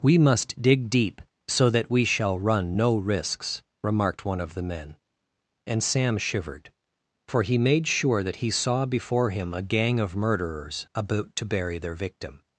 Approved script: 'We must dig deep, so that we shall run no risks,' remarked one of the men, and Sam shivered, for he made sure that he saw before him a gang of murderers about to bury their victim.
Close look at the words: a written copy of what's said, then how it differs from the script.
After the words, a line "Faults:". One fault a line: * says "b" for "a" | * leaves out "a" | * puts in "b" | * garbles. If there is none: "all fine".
'We must dig deep, so that we shall run no risks,' remarked one of the men, and Sam shivered, for he made sure that he saw before him a gang of murderers about to bury their victim.
Faults:
all fine